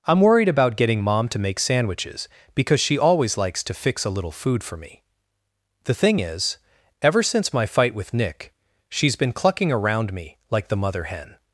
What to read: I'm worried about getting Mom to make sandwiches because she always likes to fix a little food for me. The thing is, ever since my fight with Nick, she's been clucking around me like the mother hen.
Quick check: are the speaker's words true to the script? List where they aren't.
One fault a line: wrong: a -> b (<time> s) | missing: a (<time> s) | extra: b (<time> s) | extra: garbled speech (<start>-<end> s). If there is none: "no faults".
no faults